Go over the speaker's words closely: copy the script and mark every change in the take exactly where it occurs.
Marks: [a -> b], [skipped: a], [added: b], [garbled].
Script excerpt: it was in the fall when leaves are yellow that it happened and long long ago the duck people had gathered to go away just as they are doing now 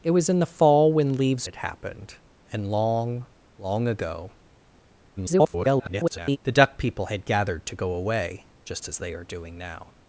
it was in the fall when leaves [skipped: are yellow that] it happened and long long ago [garbled] the duck people had gathered to go away just as they are doing now